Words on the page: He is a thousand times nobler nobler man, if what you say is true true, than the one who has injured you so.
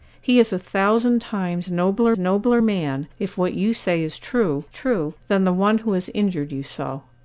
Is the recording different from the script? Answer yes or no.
no